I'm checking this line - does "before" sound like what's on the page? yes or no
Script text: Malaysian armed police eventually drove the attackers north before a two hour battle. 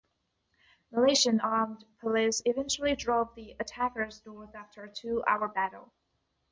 no